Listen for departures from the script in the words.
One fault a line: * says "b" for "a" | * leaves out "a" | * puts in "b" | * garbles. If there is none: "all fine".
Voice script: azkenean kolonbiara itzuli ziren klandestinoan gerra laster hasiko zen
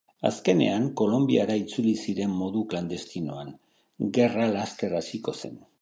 * puts in "modu"